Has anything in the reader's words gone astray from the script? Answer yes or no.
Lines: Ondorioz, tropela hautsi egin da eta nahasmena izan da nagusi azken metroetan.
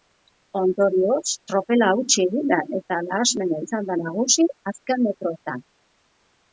no